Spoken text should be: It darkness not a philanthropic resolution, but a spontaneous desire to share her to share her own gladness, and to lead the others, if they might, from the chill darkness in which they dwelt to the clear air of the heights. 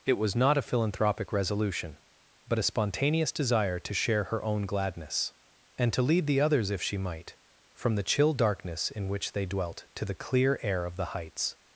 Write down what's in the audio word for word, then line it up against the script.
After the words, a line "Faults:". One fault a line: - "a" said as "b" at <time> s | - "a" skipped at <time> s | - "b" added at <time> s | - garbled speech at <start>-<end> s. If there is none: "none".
It was not a philanthropic resolution, but a spontaneous desire to share her own gladness, and to lead the others, if she might, from the chill darkness in which they dwelt to the clear air of the heights.
Faults:
- "darkness" said as "was" at 0.1 s
- "to share her" skipped at 4.4 s
- "they" said as "she" at 6.8 s